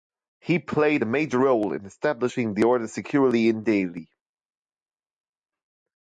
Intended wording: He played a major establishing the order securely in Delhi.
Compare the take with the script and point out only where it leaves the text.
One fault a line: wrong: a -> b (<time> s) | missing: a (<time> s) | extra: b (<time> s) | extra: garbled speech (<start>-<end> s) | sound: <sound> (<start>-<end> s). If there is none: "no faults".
extra: role in (1.4 s)